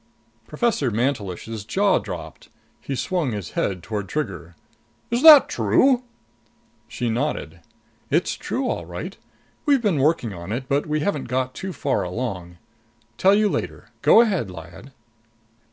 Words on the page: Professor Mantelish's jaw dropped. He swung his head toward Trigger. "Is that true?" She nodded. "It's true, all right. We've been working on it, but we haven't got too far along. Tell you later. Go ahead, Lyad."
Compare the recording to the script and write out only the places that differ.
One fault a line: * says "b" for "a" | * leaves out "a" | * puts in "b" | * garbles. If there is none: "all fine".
all fine